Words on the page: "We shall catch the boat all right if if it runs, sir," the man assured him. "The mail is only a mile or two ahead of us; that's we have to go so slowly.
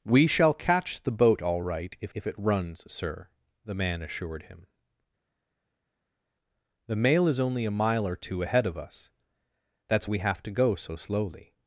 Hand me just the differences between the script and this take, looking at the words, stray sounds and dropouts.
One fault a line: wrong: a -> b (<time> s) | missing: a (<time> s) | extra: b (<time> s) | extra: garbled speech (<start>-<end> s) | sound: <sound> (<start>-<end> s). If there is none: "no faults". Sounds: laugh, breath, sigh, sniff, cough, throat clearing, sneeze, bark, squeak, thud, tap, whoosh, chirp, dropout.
no faults